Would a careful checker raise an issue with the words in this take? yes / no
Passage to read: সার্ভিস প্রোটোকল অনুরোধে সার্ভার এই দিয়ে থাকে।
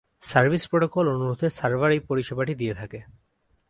yes